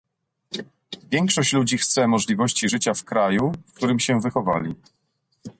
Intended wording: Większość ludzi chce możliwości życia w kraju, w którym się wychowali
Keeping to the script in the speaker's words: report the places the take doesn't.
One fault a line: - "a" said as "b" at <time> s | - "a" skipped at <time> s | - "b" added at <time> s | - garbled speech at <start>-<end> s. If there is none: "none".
none